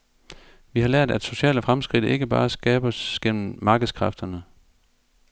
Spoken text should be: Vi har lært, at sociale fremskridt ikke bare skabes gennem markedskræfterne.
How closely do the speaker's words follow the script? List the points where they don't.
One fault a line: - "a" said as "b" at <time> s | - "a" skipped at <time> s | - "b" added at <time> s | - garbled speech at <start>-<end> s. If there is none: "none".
none